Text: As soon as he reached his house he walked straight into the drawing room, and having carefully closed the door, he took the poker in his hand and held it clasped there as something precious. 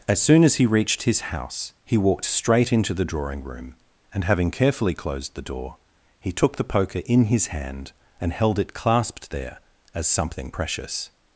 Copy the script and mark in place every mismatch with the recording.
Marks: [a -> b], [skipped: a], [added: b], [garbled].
As soon as he reached his house he walked straight into the drawing room, and having carefully closed the door, he took the poker in his hand and held it clasped there as something precious.